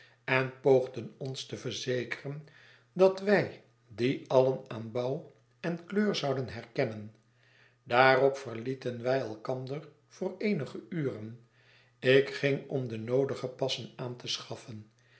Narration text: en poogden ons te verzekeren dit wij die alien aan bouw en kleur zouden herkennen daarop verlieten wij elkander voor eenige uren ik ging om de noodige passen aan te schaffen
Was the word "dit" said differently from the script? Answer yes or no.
yes